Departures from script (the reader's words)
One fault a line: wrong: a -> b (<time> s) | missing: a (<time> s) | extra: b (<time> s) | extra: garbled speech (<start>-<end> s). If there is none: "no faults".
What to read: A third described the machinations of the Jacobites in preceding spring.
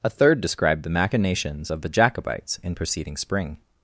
no faults